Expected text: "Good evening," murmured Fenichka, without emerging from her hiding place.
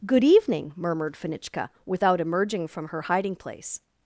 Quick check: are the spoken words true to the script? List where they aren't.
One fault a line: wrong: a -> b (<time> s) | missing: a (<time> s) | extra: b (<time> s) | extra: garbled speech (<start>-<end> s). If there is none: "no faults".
no faults